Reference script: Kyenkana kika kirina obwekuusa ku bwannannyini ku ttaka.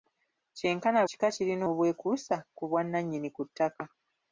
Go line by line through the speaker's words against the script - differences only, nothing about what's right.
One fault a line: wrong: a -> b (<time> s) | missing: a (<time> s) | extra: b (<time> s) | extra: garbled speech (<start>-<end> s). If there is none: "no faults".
no faults